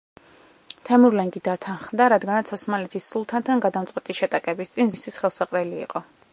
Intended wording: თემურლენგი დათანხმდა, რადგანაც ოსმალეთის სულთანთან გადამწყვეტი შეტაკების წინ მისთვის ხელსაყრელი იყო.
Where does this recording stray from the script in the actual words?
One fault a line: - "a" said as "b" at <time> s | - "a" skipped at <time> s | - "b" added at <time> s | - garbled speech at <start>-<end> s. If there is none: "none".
none